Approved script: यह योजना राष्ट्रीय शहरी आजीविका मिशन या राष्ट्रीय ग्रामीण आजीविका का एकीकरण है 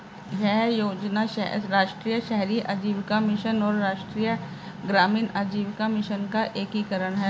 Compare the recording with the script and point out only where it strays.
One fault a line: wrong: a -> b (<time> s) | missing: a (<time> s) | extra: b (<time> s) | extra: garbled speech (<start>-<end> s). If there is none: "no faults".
wrong: या -> और (3.6 s)
extra: मिशन (5.9 s)